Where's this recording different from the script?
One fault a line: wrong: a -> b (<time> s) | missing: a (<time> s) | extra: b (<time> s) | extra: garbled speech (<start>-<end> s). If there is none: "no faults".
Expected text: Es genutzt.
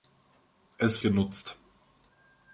no faults